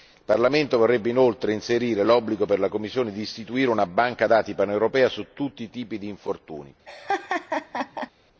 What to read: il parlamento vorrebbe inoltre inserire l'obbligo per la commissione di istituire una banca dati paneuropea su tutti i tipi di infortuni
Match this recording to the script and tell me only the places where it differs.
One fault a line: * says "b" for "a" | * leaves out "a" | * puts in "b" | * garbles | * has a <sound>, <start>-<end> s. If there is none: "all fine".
* has a laugh, 6.9-8.1 s